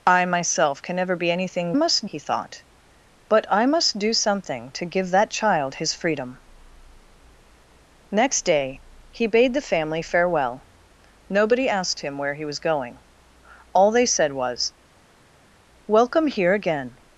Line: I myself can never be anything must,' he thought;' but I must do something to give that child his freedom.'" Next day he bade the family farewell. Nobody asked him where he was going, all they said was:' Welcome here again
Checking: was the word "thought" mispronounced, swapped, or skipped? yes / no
no